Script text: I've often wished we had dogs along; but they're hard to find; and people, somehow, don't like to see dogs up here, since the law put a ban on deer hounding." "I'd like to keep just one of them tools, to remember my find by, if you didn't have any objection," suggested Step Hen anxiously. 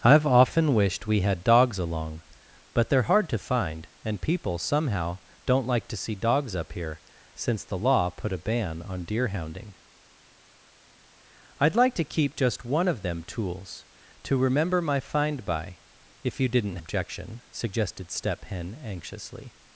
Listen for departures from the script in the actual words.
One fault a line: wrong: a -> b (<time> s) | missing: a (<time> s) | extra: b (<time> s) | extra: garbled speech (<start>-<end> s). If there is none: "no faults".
missing: have any (16.8 s)